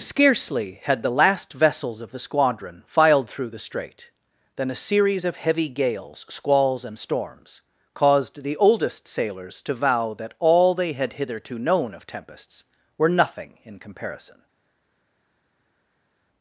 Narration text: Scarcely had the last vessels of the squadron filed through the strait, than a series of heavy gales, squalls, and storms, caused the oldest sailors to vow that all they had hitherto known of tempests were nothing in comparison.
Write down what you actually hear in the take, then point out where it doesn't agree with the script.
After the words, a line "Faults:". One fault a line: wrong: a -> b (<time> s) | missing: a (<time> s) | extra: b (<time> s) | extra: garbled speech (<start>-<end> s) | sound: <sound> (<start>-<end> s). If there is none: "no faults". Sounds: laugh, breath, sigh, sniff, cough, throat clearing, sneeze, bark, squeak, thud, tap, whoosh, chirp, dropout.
Scarcely had the last vessels of the squadron filed through the strait, than a series of heavy gales, squalls, and storms, caused the oldest sailors to vow that all they had hitherto known of tempests were nothing in comparison.
Faults:
no faults